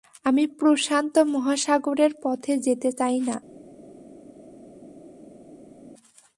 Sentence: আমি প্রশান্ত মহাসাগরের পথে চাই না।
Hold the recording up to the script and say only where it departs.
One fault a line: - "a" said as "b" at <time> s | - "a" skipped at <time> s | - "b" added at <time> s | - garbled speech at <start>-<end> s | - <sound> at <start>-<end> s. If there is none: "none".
- "যেতে" added at 2.6 s